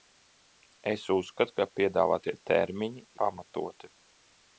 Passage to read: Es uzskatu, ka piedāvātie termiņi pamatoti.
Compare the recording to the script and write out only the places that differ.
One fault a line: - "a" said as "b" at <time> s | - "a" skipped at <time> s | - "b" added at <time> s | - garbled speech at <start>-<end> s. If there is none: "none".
none